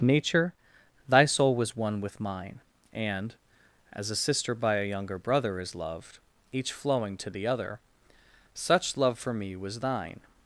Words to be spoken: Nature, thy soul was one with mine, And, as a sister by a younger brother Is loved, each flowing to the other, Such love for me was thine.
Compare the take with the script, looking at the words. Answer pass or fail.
pass